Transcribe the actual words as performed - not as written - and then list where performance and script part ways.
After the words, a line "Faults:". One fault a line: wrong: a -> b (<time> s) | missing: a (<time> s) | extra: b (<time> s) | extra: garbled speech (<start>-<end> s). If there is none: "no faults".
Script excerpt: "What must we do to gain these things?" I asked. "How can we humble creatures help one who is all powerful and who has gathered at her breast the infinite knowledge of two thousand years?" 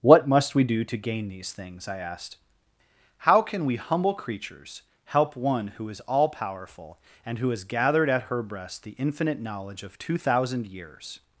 "What must we do to gain these things?" I asked. "How can we humble creatures help one who is all powerful and who has gathered at her breast the infinite knowledge of two thousand years?"
Faults:
no faults